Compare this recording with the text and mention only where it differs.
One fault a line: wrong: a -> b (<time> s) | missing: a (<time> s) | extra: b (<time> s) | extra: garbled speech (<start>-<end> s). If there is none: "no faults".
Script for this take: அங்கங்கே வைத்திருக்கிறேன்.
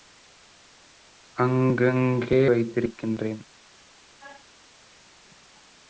no faults